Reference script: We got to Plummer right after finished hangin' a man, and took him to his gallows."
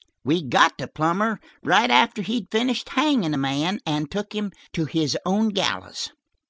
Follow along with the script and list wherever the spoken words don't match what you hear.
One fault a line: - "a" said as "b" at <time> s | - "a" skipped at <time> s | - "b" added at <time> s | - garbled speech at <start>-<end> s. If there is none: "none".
- "he'd" added at 2.2 s
- "own" added at 5.3 s